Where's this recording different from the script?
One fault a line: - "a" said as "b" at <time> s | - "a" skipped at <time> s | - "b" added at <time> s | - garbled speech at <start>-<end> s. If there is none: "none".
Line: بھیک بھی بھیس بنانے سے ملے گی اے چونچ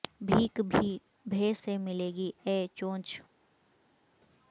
- "بنانے" skipped at 1.6 s